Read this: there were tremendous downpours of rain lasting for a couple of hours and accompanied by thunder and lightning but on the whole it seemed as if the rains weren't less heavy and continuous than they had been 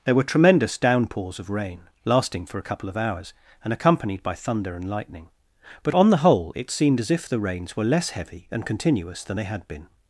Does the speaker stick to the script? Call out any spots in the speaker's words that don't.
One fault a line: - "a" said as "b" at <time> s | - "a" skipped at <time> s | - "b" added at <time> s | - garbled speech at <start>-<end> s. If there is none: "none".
- "weren't" said as "were" at 7.7 s